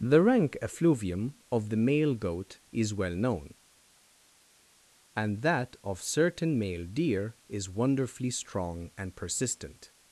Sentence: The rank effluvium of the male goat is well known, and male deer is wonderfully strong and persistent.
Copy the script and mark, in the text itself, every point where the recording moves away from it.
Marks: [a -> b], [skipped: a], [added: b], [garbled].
The rank effluvium of the male goat is well known, and [added: that of certain] male deer is wonderfully strong and persistent.